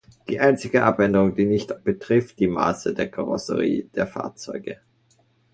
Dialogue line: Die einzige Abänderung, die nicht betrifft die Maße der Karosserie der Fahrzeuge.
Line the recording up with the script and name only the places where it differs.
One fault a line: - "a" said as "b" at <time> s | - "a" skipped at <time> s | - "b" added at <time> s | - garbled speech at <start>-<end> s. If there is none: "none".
none